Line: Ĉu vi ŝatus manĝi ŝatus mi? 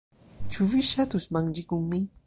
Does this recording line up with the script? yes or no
no